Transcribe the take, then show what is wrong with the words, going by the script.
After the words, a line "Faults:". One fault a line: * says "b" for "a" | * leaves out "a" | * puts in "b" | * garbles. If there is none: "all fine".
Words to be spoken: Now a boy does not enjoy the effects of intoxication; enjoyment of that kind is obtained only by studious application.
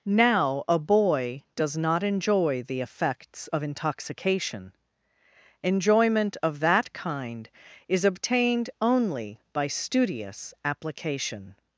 Now a boy does not enjoy the effects of intoxication; enjoyment of that kind is obtained only by studious application.
Faults:
all fine